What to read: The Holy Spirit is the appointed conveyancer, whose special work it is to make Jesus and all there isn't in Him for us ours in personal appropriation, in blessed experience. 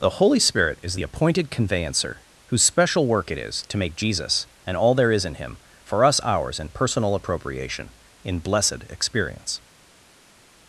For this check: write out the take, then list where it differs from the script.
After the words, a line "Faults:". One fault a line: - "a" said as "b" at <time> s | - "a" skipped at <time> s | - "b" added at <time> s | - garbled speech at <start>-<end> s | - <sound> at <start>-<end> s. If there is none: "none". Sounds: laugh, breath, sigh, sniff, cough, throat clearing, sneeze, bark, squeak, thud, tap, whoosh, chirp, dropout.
The Holy Spirit is the appointed conveyancer, whose special work it is to make Jesus and all there is in Him for us ours in personal appropriation, in blessed experience.
Faults:
- "isn't" said as "is" at 5.1 s